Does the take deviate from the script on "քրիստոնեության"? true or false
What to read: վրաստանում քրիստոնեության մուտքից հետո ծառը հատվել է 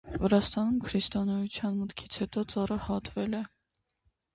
false